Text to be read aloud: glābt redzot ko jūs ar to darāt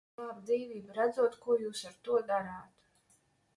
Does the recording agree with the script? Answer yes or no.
no